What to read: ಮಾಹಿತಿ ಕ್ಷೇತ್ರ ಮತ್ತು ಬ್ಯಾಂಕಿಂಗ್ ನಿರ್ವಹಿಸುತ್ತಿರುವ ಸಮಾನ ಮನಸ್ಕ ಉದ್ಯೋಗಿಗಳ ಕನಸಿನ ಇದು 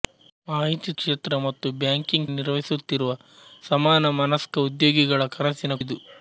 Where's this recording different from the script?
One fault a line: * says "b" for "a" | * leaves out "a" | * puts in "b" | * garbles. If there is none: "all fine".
all fine